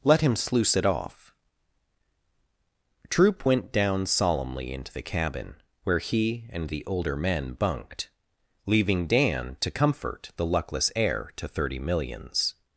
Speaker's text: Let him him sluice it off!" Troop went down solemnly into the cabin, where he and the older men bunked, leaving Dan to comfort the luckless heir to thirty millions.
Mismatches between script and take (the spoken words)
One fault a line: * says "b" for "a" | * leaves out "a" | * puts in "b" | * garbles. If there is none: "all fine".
* leaves out "him"